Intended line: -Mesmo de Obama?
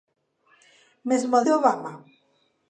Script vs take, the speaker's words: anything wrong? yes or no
no